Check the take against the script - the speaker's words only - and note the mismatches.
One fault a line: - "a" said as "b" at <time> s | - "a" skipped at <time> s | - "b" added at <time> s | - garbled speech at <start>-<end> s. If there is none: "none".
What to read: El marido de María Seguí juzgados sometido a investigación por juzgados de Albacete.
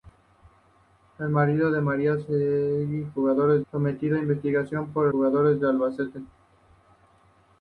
none